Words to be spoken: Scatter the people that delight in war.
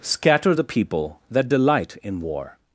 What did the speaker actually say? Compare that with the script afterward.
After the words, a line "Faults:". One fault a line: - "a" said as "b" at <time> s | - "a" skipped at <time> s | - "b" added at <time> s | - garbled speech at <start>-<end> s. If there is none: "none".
Scatter the people that delight in war.
Faults:
none